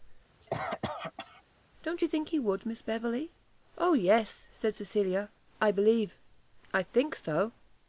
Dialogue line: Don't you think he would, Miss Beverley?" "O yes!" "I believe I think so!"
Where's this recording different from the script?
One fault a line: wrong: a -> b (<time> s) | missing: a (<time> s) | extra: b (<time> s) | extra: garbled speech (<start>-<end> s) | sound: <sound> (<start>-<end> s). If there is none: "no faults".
sound: cough (0.4-1.4 s)
extra: said Cecilia (4.5 s)